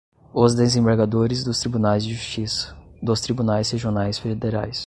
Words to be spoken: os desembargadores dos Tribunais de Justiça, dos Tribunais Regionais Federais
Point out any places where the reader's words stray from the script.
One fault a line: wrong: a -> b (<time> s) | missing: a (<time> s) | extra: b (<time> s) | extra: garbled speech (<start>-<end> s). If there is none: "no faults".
no faults